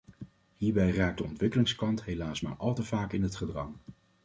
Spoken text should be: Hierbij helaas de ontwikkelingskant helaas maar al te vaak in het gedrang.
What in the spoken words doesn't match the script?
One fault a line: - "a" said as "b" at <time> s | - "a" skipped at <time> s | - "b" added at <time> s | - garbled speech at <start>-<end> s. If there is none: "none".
- "helaas" said as "raakt" at 0.9 s